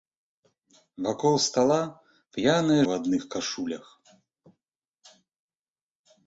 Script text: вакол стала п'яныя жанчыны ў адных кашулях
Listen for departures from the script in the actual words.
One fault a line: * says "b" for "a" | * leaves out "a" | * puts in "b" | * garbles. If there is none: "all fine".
* leaves out "жанчыны"